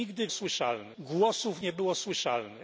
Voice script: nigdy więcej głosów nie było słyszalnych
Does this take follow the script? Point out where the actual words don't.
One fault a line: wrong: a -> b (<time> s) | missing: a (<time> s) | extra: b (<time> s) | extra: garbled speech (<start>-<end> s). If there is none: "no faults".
wrong: więcej -> słyszalnych (0.3 s)